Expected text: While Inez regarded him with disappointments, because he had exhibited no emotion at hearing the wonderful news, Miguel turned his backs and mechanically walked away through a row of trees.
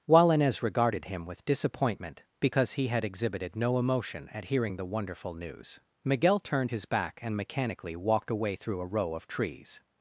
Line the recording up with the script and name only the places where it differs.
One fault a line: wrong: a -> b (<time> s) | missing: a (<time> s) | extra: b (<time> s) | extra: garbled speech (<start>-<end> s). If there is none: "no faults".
wrong: disappointments -> disappointment (1.4 s)
wrong: backs -> back (6.8 s)